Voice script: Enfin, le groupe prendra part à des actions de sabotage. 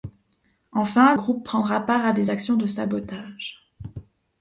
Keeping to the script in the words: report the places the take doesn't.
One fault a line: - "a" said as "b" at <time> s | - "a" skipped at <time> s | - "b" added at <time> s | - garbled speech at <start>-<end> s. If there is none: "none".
- "le" skipped at 1.1 s